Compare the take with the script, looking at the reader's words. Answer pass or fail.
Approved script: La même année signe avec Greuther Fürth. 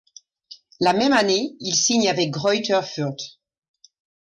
fail